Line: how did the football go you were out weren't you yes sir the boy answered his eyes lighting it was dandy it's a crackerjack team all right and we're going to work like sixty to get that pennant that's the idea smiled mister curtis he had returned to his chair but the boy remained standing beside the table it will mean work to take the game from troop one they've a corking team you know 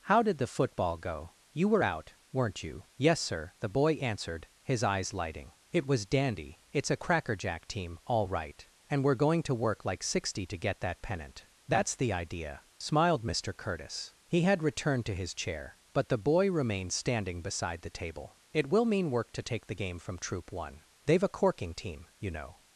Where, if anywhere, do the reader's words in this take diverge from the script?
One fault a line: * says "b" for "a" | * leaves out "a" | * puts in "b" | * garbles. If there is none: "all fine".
all fine